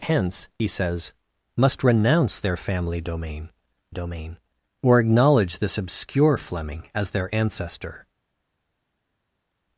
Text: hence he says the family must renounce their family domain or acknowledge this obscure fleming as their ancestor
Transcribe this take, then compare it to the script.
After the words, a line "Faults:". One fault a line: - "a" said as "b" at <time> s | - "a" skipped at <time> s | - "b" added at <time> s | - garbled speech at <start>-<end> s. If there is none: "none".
hence he says must renounce their family domain domain or acknowledge this obscure fleming as their ancestor
Faults:
- "the family" skipped at 1.1 s
- "domain" added at 3.9 s